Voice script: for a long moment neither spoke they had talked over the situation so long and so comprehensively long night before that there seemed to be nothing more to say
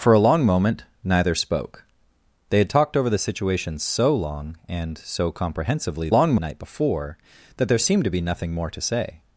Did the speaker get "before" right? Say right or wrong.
right